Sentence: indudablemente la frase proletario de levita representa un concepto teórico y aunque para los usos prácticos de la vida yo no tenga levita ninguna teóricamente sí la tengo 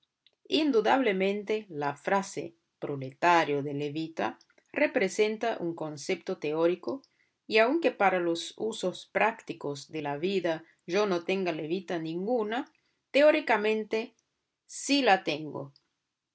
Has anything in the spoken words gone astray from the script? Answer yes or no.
no